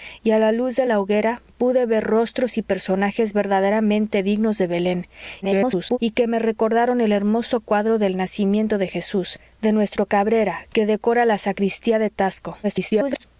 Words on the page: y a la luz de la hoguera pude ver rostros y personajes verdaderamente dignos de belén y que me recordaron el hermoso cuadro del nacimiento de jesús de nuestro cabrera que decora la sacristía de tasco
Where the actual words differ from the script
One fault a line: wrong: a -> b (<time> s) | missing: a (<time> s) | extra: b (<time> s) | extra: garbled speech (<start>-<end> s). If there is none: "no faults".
extra: garbled speech (5.4-6.0 s)
extra: garbled speech (12.6-13.2 s)